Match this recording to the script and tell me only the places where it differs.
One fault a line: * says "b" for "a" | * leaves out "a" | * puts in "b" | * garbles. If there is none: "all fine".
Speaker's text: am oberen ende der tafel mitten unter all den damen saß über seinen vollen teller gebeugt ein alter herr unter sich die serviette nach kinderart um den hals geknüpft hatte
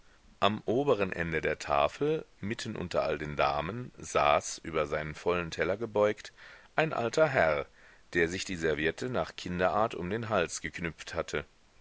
* says "der" for "unter"